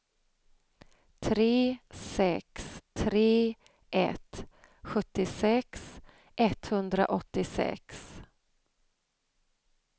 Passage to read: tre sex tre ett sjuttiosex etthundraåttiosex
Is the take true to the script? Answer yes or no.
yes